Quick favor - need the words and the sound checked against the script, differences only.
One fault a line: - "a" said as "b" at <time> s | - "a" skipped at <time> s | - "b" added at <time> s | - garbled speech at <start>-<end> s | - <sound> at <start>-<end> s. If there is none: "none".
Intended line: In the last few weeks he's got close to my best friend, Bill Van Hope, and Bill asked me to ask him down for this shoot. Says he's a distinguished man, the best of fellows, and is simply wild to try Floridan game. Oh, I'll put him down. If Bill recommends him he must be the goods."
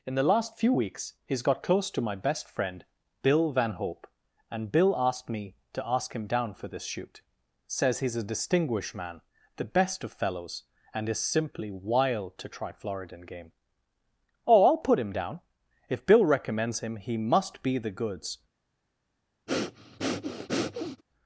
- breath at 19.5-21.0 s